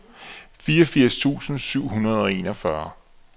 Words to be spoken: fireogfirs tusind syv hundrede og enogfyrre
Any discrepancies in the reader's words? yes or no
no